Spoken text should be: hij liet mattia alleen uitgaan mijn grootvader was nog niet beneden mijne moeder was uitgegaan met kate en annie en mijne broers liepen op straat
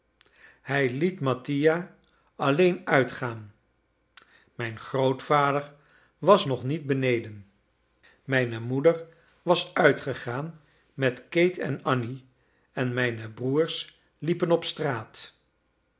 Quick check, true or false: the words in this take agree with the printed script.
true